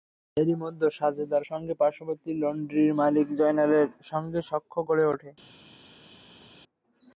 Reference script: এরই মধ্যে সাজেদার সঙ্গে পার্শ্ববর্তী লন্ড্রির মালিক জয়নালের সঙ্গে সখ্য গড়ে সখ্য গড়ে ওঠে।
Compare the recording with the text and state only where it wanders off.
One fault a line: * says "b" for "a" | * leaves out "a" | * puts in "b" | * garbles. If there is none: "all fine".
* leaves out "সখ্য গড়ে"